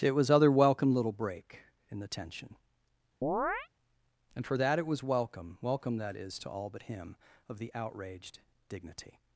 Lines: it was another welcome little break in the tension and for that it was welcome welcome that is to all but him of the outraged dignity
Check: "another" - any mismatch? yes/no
yes